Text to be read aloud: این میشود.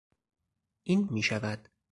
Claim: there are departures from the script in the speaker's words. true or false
false